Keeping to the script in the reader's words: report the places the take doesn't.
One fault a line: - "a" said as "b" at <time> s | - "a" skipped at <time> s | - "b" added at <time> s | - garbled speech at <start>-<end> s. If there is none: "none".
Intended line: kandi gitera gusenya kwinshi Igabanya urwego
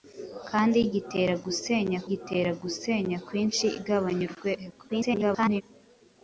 - "gitera gusenya" added at 2.1 s
- garbled speech at 4.9-5.6 s